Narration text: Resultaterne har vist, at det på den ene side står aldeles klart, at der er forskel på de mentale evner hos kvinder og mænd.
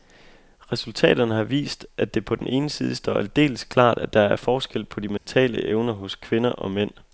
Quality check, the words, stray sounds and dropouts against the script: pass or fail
fail